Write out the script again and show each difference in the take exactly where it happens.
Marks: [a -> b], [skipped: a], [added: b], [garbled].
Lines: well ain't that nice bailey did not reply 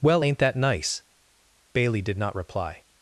well ain't that nice bailey did not reply